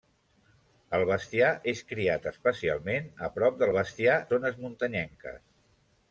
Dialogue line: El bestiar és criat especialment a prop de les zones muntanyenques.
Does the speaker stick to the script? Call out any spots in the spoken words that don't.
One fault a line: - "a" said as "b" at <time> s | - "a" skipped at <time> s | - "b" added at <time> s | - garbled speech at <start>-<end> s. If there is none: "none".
- "les" said as "bestiar" at 3.7 s